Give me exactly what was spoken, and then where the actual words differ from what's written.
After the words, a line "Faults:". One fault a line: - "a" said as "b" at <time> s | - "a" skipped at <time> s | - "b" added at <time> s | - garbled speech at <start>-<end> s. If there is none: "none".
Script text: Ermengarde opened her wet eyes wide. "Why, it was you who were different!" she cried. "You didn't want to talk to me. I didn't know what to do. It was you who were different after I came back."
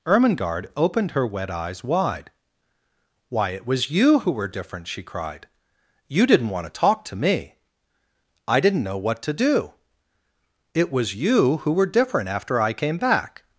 Ermengarde opened her wet eyes wide. "Why, it was you who were different!" she cried. "You didn't want to talk to me. I didn't know what to do. It was you who were different after I came back."
Faults:
none